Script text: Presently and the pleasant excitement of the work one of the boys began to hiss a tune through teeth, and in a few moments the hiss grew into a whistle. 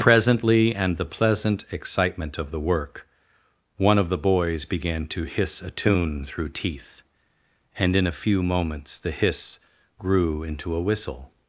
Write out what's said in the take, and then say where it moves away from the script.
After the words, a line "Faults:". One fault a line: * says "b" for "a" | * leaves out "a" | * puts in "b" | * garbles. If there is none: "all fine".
Presently and the pleasant excitement of the work one of the boys began to hiss a tune through teeth, and in a few moments the hiss grew into a whistle.
Faults:
all fine